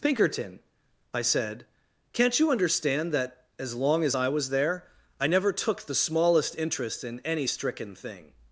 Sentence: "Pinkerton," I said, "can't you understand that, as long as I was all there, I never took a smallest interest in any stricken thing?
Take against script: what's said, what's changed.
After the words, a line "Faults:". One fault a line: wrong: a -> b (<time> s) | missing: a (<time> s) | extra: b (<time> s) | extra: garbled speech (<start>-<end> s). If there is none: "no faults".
"Pinkerton," I said, "can't you understand that, as long as I was there, I never took the smallest interest in any stricken thing?
Faults:
missing: all (4.5 s)
wrong: a -> the (5.8 s)